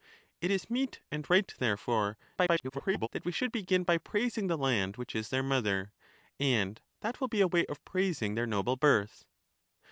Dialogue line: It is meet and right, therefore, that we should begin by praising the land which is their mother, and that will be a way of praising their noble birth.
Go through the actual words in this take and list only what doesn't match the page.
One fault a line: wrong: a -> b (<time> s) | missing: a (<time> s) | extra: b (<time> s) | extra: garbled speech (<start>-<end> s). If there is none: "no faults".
extra: garbled speech (2.4-3.1 s)